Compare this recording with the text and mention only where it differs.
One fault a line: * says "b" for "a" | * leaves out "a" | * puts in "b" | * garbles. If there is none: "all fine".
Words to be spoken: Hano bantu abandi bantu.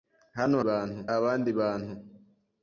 all fine